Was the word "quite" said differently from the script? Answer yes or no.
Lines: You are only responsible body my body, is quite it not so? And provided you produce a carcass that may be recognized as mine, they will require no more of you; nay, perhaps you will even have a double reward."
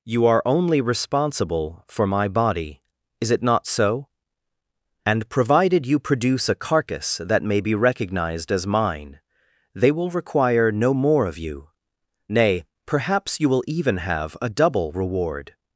yes